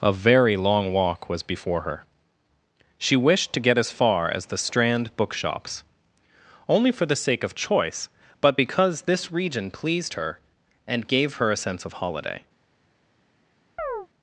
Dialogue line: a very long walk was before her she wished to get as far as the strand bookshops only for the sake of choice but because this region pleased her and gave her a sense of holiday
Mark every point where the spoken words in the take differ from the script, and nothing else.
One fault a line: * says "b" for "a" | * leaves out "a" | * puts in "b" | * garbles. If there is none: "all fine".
all fine